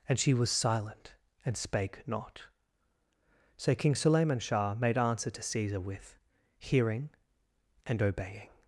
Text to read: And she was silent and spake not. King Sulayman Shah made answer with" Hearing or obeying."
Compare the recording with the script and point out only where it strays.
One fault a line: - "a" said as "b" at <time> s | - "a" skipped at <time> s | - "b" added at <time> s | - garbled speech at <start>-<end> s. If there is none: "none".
- "So" added at 3.6 s
- "to Caesar" added at 5.3 s
- "or" said as "and" at 7.9 s